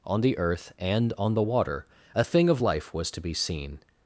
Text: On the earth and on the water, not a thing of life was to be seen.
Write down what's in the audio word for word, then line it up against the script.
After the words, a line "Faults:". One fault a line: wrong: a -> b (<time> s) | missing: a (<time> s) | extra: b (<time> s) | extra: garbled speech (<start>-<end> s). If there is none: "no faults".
On the earth and on the water, a thing of life was to be seen.
Faults:
missing: not (1.9 s)